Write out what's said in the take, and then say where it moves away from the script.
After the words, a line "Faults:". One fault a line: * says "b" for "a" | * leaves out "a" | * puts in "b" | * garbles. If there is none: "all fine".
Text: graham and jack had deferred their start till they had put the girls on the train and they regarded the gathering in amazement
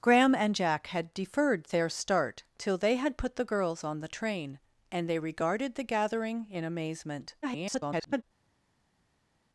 graham and jack had deferred their start till they had put the girls on the train and they regarded the gathering in amazement [garbled]
Faults:
* garbles